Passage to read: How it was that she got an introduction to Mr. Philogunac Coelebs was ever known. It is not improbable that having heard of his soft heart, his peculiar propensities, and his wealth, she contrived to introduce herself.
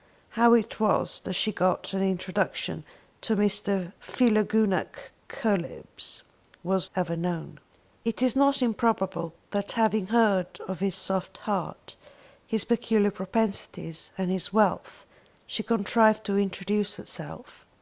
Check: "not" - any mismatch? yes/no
no